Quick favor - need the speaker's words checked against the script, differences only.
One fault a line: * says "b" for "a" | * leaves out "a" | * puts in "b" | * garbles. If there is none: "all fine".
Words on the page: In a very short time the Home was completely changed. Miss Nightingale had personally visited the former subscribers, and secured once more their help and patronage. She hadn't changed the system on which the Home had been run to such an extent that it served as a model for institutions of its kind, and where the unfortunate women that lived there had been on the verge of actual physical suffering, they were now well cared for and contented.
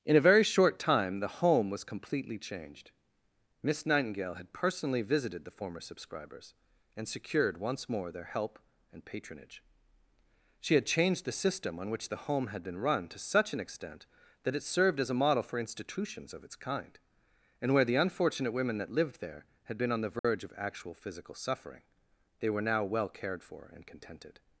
* says "had" for "hadn't"